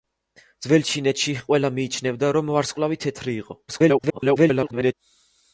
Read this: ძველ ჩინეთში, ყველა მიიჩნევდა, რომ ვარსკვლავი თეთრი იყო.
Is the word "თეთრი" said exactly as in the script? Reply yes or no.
yes